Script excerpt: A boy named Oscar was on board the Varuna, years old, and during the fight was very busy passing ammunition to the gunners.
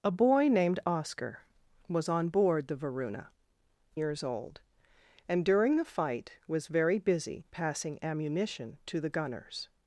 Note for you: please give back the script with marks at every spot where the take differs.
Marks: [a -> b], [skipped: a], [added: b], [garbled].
A boy named Oscar was on board the Varuna, years old, and during the fight was very busy passing ammunition to the gunners.